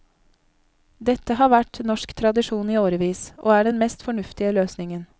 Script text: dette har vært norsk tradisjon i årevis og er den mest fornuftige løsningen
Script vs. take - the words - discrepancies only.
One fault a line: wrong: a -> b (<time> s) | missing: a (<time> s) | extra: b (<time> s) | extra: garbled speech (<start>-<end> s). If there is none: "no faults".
no faults